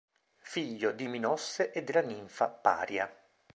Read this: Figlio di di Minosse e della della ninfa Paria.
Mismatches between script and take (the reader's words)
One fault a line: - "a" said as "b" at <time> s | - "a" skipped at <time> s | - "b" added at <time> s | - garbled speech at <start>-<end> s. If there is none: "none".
- "di" skipped at 1.1 s
- "della" skipped at 2.0 s